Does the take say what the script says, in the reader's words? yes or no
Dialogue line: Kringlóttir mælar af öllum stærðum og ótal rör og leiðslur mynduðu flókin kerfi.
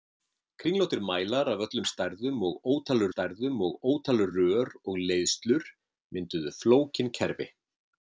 no